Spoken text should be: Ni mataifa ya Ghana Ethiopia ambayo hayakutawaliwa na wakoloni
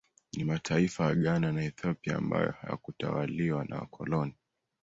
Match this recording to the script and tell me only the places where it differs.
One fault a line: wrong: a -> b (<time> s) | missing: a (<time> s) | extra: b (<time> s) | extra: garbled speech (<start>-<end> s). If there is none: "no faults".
extra: na (1.5 s)